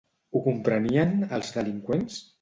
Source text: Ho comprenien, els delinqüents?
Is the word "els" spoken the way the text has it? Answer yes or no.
yes